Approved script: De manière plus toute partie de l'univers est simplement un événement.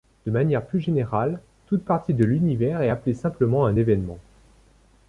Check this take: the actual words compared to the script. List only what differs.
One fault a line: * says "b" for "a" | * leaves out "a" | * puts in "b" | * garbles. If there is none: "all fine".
* puts in "générale"
* puts in "appelée"